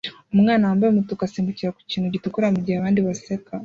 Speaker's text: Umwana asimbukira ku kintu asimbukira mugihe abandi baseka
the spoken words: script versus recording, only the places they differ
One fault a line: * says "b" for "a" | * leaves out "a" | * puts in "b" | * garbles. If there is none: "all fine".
* puts in "wambaye umutuku"
* says "gitukura" for "asimbukira"